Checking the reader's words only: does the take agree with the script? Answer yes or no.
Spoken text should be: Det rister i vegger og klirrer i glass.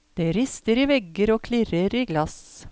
yes